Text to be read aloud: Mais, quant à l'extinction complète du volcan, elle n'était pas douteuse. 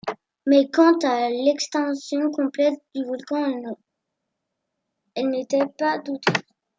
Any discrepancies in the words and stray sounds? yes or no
no